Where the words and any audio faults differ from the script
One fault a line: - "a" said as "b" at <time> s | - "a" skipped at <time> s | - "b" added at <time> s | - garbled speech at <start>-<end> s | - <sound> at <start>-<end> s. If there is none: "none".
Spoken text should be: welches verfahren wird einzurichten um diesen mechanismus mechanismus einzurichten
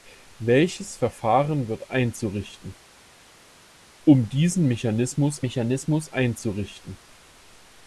none